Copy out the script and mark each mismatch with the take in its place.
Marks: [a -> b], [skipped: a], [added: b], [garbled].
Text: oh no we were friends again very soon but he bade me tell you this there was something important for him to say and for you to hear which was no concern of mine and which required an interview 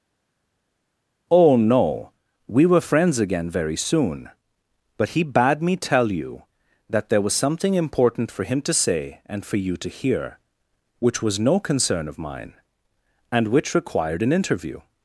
oh no we were friends again very soon but he bade me tell you [this -> that] there was something important for him to say and for you to hear which was no concern of mine and which required an interview